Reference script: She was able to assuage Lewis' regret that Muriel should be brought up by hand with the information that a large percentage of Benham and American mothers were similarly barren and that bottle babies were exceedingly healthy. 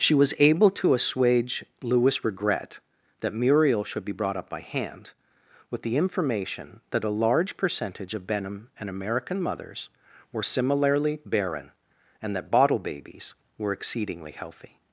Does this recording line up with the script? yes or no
yes